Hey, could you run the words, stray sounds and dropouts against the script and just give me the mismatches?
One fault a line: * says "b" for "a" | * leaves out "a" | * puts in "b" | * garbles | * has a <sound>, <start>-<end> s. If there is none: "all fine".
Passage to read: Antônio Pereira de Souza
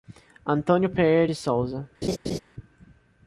* has a laugh, 2.0-2.4 s